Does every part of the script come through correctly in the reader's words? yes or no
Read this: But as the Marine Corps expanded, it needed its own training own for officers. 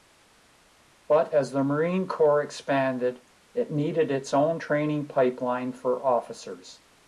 no